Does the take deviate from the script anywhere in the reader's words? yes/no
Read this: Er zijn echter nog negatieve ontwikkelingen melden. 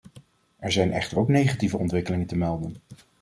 yes